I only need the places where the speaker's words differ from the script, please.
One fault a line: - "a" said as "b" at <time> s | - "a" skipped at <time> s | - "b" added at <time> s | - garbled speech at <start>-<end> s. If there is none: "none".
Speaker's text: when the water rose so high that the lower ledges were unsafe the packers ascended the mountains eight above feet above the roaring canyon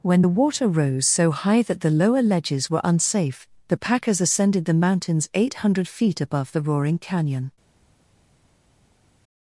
- "above" said as "hundred" at 5.5 s